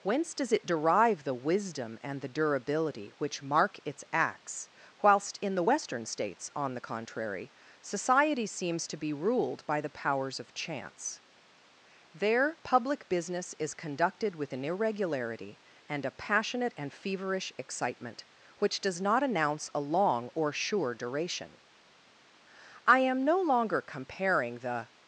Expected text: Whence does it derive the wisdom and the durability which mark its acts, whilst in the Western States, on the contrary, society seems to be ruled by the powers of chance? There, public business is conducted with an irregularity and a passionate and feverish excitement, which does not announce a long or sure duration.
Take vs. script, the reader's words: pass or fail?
fail